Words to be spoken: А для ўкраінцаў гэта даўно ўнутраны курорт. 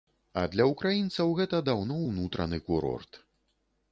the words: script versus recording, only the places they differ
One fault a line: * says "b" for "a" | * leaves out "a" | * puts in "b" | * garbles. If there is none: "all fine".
all fine